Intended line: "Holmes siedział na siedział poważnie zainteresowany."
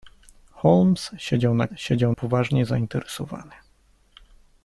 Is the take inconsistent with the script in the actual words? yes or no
no